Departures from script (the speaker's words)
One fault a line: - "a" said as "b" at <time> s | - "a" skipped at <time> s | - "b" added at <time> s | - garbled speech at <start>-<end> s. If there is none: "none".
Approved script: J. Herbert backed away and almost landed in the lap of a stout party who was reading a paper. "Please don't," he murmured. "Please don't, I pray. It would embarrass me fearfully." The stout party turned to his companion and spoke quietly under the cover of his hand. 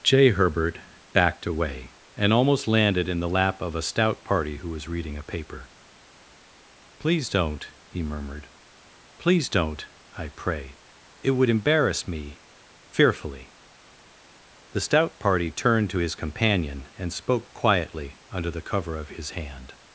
none